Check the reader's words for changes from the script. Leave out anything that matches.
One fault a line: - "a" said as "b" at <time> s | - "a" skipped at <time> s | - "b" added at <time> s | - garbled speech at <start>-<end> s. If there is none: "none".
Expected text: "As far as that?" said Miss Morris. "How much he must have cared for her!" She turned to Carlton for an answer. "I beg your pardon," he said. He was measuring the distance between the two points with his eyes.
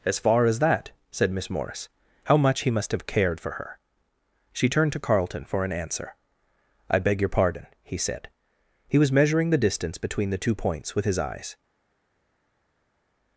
none